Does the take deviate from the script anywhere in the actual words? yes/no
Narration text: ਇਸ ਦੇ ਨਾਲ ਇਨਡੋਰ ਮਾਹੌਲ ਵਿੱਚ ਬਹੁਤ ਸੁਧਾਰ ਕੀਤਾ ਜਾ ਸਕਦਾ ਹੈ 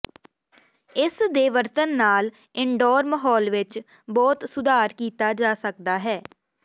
yes